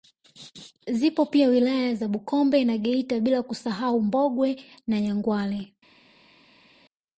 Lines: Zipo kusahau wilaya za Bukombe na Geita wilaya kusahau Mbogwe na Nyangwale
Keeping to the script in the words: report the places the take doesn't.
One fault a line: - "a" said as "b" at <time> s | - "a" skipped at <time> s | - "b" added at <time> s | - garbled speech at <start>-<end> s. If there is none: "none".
- "kusahau" said as "pia" at 1.2 s
- "wilaya" said as "bila" at 3.2 s